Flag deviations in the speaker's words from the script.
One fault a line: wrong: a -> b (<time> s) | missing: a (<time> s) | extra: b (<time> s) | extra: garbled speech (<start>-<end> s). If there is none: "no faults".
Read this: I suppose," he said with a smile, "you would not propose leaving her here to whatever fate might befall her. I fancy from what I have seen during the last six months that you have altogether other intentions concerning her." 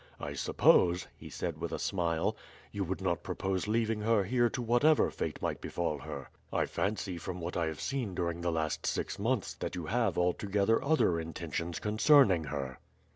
no faults